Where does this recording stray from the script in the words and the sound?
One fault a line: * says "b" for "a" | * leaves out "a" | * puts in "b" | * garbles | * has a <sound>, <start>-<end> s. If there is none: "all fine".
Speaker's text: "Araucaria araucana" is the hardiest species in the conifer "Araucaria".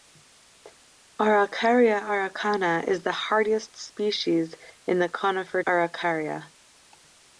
all fine